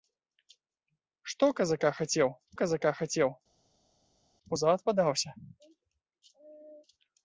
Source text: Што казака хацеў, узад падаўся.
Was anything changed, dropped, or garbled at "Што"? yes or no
no